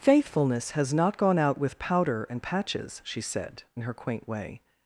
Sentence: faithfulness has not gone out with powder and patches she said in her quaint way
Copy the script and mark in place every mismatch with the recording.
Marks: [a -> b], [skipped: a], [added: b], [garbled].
faithfulness has not gone out with powder and patches she said in her quaint way